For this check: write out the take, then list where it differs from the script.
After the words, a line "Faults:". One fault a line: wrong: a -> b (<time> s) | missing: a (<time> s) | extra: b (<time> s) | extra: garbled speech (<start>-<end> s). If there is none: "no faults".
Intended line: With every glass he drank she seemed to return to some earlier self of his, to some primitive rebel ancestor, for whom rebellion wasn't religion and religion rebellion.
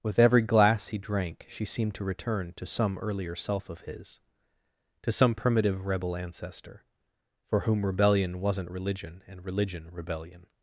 With every glass he drank she seemed to return to some earlier self of his, to some primitive rebel ancestor, for whom rebellion wasn't religion and religion rebellion.
Faults:
no faults